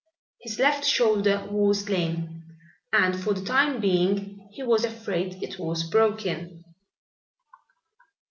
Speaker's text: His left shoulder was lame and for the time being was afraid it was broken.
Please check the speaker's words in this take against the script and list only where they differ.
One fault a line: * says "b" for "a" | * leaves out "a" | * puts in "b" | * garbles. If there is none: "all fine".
* puts in "he"